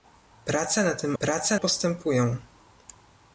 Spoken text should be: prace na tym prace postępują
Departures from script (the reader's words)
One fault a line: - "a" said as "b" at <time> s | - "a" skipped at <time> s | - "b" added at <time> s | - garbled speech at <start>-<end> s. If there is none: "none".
none